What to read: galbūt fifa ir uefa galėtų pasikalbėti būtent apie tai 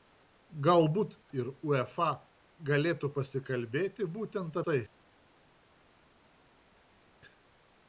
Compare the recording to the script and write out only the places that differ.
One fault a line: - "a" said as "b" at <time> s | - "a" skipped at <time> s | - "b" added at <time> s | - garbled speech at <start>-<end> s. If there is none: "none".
- "fifa" skipped at 1.2 s
- "apie" skipped at 4.6 s